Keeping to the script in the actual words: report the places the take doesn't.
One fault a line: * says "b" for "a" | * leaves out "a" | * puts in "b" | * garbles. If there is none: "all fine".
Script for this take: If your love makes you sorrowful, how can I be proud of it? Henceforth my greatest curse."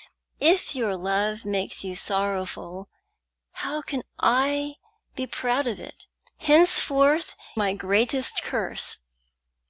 all fine